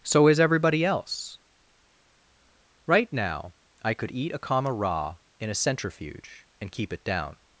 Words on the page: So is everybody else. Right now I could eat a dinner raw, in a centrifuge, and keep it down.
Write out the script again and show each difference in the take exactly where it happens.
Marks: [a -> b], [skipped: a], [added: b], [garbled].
So is everybody else. Right now I could eat a [dinner -> comma] raw, in a centrifuge, and keep it down.